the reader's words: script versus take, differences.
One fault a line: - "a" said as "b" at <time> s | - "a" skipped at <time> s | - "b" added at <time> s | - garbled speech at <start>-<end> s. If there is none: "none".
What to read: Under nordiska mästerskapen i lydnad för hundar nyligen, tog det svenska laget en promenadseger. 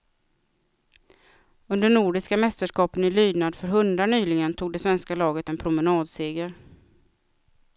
none